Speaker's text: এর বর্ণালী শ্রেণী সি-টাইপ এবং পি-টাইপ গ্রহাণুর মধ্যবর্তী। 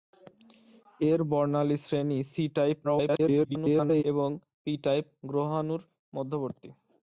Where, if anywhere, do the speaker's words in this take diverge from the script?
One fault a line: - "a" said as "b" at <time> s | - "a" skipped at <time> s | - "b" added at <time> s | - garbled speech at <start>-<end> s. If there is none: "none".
- garbled speech at 2.8-4.0 s